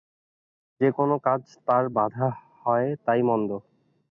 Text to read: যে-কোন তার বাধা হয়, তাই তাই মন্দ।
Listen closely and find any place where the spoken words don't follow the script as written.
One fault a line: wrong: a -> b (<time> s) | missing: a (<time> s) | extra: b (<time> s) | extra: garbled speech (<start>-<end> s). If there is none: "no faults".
extra: কাজ (1.2 s)
missing: তাই (3.2 s)